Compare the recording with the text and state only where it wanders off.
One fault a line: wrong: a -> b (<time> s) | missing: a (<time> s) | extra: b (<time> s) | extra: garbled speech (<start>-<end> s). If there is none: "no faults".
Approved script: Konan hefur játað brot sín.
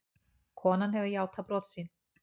no faults